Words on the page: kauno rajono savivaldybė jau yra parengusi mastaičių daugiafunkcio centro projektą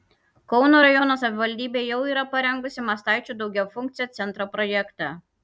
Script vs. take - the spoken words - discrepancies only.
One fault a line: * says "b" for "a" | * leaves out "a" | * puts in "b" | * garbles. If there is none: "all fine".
all fine